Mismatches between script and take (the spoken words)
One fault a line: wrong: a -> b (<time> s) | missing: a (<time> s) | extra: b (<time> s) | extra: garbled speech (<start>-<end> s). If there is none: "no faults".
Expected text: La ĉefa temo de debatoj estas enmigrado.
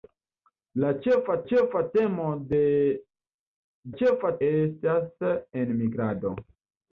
extra: ĉefa (1.5 s)
wrong: debatoj -> ĉefa (4.0 s)